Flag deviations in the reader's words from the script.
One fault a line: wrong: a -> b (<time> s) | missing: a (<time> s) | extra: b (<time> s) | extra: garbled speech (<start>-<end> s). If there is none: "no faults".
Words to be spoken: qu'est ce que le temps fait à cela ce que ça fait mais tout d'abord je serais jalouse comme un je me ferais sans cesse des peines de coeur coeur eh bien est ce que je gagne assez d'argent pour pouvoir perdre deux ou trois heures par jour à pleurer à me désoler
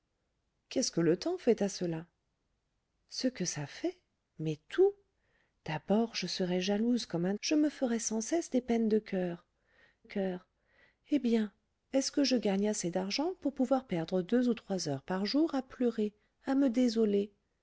no faults